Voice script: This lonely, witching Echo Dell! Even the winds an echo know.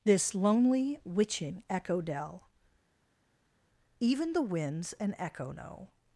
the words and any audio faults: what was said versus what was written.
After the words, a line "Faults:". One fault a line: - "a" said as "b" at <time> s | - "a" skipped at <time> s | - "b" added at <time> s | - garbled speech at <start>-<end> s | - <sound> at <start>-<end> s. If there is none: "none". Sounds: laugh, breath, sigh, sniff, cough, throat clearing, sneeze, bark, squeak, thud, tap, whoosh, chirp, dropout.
This lonely, witching Echo Dell! Even the winds an echo know.
Faults:
none